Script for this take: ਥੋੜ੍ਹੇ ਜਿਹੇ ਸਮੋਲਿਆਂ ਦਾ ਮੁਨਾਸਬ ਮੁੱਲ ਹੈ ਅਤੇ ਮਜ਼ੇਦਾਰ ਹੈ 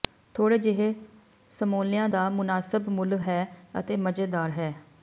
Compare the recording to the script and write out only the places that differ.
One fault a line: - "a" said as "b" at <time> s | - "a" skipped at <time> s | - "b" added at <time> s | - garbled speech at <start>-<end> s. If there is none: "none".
none